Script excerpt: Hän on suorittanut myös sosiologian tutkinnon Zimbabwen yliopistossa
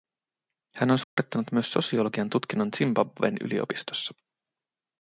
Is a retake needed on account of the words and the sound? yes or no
yes